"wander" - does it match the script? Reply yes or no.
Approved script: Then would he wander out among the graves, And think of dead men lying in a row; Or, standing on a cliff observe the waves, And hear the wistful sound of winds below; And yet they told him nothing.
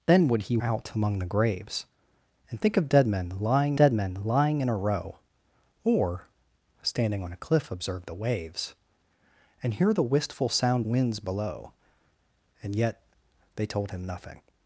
no